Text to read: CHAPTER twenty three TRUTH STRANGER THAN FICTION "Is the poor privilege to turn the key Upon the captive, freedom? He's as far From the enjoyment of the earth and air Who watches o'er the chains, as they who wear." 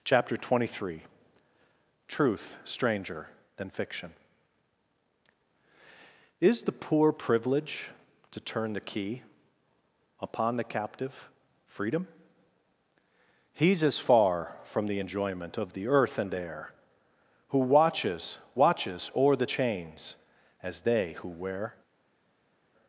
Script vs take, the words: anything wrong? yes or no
yes